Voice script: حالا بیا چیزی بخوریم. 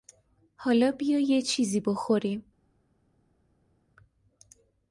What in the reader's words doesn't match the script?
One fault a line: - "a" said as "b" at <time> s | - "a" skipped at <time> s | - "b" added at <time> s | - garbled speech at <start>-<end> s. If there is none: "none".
- "یه" added at 1.2 s